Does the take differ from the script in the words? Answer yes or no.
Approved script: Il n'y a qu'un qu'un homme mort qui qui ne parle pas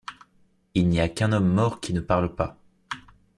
yes